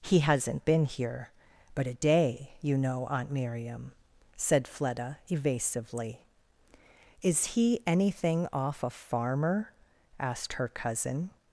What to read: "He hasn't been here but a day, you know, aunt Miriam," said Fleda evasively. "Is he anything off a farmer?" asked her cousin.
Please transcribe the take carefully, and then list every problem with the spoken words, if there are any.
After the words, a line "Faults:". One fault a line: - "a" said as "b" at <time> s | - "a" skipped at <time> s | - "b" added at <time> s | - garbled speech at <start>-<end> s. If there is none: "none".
"He hasn't been here but a day, you know, aunt Miriam," said Fleda evasively. "Is he anything off a farmer?" asked her cousin.
Faults:
none